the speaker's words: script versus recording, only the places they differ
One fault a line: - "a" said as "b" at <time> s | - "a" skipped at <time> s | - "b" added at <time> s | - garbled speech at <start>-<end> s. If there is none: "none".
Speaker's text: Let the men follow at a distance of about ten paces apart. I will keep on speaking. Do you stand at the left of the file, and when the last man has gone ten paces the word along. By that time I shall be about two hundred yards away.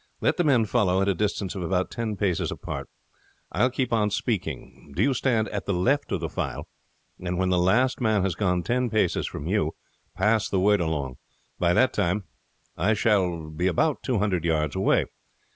- "from you pass" added at 9.3 s